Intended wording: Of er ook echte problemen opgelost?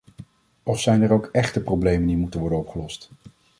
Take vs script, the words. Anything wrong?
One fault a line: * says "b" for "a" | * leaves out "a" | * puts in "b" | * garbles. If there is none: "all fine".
* puts in "zijn"
* puts in "die moeten worden"